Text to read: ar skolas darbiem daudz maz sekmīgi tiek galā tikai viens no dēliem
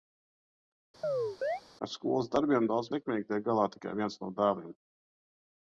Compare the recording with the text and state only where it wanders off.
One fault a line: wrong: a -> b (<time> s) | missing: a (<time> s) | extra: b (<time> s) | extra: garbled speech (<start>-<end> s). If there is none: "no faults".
missing: maz (2.9 s)